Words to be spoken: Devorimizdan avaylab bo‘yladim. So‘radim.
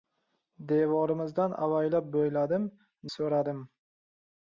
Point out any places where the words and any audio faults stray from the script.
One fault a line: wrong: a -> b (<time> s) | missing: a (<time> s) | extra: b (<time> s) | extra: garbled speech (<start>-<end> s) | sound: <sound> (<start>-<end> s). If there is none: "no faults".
no faults